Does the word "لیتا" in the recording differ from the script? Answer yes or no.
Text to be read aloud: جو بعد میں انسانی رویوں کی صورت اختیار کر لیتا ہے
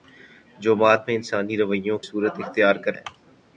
yes